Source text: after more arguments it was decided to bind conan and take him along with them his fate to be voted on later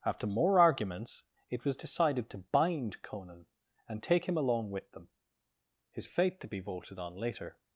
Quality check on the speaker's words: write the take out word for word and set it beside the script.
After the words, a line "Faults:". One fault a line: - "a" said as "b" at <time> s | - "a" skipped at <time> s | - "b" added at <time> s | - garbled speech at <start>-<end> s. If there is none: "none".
after more arguments it was decided to bind conan and take him along with them his fate to be voted on later
Faults:
none